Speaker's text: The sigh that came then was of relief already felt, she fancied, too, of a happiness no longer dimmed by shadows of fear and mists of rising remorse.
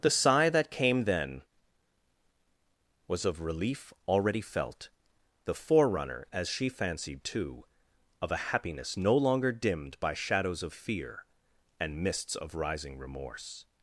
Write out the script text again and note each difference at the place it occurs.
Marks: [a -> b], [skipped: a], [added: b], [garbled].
The sigh that came then was of relief already felt, [added: the forerunner as] she fancied, too, of a happiness no longer dimmed by shadows of fear and mists of rising remorse.